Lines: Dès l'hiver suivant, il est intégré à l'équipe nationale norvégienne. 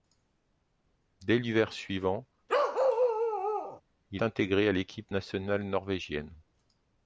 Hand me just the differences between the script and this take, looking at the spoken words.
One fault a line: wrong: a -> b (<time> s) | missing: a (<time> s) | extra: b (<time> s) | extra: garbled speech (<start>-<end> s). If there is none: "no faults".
missing: est (4.2 s)